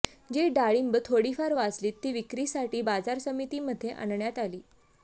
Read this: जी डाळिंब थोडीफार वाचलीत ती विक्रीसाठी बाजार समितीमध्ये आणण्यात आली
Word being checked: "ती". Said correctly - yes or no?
yes